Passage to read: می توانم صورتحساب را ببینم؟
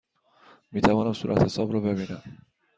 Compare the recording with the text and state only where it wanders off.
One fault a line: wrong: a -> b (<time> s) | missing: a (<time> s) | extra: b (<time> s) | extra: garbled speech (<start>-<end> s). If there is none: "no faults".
no faults